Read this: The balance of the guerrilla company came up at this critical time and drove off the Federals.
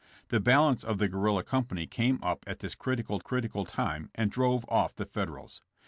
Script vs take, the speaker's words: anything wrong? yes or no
yes